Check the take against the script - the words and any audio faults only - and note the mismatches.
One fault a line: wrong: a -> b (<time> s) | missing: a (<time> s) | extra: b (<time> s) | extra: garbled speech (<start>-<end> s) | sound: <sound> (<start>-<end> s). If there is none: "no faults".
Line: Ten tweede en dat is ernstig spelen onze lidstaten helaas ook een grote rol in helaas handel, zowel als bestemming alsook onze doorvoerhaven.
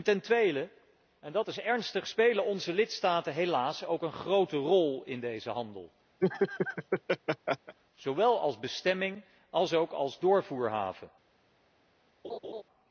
wrong: helaas -> deze (5.2 s)
sound: laugh (6.2-7.8 s)
wrong: onze -> als (9.9 s)
sound: laugh (12.2-12.6 s)